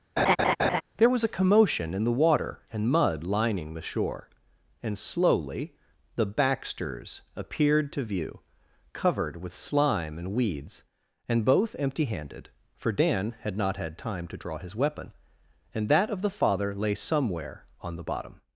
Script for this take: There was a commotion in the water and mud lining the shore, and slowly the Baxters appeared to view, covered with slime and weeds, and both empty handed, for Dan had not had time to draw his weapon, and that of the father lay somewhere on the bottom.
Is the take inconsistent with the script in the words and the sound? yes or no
yes